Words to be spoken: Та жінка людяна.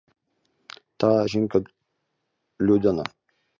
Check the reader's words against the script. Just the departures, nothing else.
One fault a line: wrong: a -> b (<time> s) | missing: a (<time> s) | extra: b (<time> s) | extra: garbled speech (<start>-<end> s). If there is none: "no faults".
no faults